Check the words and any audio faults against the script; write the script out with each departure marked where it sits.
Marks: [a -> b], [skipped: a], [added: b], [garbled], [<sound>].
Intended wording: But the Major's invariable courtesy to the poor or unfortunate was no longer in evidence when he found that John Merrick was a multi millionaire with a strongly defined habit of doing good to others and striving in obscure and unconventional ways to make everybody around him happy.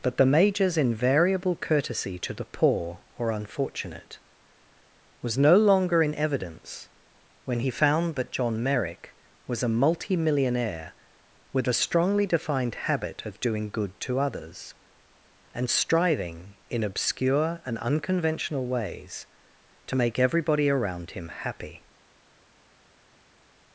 But the Major's invariable courtesy to the poor or unfortunate was no longer in evidence when he found that John Merrick was a multi millionaire with a strongly defined habit of doing good to others and striving in obscure and unconventional ways to make everybody around him happy.